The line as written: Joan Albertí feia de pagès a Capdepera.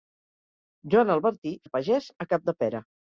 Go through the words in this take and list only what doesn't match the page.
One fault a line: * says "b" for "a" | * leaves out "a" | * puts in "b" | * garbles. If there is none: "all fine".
* leaves out "feia"